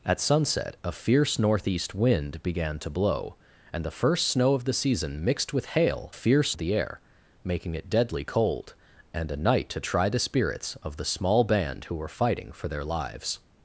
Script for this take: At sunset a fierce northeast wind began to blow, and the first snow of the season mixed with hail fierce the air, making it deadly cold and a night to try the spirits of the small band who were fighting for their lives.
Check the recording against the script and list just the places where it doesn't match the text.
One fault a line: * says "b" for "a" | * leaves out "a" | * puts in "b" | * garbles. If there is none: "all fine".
all fine